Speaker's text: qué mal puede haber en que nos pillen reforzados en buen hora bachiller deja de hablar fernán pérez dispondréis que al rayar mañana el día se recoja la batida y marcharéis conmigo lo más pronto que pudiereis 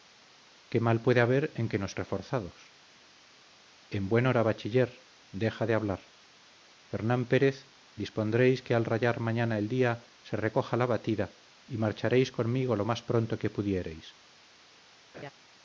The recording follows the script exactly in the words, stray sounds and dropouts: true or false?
false